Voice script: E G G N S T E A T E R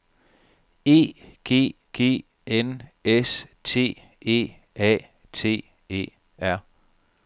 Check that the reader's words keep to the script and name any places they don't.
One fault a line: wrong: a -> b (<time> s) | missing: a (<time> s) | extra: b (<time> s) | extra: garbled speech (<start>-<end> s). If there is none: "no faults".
no faults